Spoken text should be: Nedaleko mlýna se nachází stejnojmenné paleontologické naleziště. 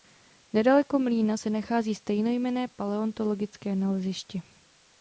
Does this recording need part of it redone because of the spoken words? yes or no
no